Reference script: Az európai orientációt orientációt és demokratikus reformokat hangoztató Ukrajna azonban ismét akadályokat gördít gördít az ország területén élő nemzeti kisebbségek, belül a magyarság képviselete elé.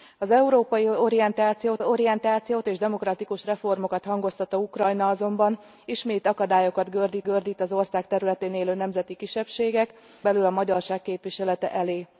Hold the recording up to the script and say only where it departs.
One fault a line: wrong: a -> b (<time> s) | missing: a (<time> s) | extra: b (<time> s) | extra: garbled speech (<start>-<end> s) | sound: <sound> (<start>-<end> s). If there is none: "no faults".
no faults